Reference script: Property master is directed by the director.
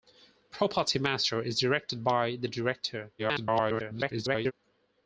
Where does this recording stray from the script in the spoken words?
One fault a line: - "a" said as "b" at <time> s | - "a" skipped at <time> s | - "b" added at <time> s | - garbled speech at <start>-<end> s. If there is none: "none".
- garbled speech at 3.2-4.5 s